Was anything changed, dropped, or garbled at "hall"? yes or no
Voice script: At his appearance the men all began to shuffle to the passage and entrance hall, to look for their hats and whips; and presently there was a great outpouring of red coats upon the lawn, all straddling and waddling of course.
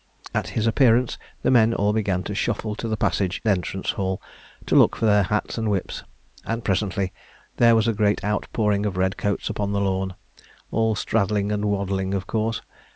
no